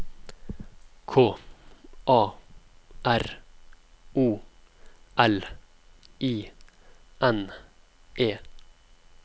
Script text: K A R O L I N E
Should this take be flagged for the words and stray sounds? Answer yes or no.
no